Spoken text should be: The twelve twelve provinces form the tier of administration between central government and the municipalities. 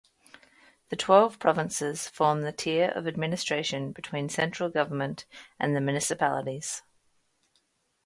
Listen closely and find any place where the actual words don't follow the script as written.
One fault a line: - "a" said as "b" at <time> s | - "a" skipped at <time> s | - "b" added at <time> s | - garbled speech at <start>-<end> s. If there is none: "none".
- "twelve" skipped at 1.4 s